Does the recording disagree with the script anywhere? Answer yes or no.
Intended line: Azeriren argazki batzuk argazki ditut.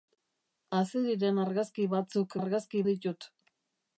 no